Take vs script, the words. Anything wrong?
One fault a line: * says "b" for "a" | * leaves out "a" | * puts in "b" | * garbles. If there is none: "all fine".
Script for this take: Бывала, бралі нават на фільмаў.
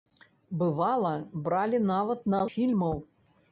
all fine